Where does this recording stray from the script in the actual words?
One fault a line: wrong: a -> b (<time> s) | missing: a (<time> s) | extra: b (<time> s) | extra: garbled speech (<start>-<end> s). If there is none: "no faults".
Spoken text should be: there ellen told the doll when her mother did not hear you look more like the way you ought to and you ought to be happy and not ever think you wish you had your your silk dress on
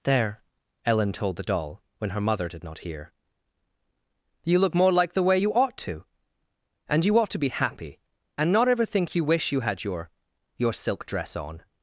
no faults